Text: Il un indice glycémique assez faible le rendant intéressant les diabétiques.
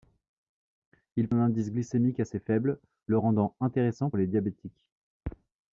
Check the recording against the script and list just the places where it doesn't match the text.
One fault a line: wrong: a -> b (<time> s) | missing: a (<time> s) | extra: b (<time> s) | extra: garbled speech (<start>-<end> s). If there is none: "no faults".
no faults